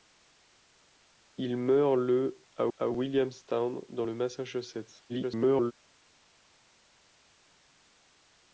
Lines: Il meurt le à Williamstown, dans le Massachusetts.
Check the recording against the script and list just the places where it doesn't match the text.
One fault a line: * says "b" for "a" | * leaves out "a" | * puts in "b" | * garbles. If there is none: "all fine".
* puts in "à"
* garbles